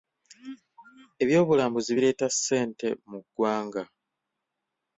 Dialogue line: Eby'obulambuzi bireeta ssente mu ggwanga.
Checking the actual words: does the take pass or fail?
pass